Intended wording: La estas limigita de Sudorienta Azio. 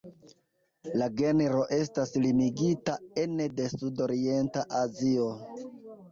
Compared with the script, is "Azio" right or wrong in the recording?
right